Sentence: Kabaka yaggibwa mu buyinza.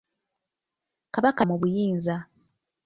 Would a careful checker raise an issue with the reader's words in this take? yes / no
yes